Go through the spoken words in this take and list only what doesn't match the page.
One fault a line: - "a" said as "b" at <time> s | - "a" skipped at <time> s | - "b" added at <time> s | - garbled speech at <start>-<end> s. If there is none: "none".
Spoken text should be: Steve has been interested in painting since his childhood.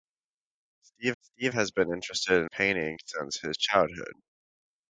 - "steve" added at 1.2 s
- "in" skipped at 2.4 s